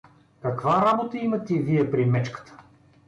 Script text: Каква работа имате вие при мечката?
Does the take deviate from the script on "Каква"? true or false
false